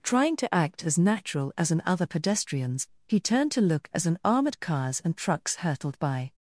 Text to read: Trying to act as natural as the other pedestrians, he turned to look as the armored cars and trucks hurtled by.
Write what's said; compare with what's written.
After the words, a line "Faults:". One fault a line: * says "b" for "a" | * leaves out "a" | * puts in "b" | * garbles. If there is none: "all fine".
Trying to act as natural as an other pedestrians, he turned to look as an armored cars and trucks hurtled by.
Faults:
* says "an" for "the"
* says "an" for "the"